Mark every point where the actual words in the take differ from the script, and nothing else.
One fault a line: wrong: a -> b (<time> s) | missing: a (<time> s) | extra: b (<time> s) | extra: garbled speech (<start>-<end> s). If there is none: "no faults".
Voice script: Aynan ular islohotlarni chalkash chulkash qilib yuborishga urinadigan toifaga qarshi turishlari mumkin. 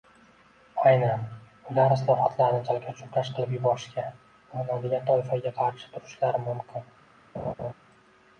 no faults